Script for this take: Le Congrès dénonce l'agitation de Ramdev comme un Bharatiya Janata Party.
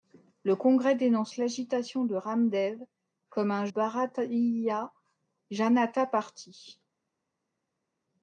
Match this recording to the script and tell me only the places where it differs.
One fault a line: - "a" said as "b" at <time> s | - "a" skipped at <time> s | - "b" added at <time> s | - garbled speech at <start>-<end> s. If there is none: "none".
none